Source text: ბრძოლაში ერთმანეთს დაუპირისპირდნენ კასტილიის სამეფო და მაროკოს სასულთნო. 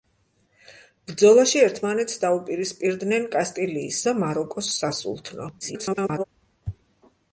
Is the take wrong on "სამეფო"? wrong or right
wrong